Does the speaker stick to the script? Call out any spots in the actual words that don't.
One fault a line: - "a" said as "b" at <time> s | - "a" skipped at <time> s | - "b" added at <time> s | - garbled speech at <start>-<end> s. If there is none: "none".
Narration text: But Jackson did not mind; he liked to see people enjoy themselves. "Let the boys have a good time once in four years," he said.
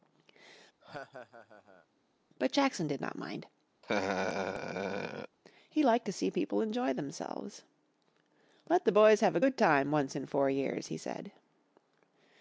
none